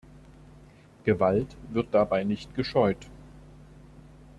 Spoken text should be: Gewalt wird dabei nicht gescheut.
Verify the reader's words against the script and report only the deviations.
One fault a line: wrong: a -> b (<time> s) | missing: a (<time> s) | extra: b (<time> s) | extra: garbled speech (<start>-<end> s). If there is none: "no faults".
no faults